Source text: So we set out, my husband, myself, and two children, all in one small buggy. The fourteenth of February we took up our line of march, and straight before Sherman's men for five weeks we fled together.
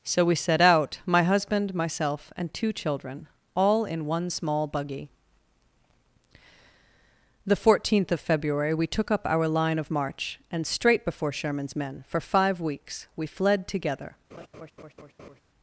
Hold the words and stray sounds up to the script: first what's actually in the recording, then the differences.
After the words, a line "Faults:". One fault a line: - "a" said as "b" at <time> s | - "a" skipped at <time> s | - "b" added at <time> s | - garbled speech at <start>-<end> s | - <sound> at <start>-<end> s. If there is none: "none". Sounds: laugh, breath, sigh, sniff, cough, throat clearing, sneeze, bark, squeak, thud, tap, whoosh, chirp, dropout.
So we set out, my husband, myself, and two children, all in one small buggy. The fourteenth of February we took up our line of march, and straight before Sherman's men for five weeks we fled together.
Faults:
- laugh at 14.3-15.4 s